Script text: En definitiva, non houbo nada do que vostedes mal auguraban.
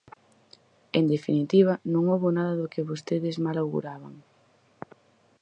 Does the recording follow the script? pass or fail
pass